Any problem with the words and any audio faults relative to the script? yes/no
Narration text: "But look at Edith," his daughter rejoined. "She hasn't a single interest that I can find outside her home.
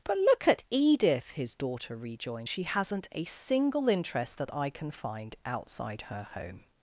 no